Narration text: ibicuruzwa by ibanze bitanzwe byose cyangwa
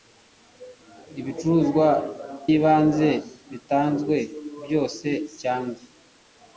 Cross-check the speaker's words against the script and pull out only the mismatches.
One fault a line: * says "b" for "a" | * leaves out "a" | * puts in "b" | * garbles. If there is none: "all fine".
* leaves out "by"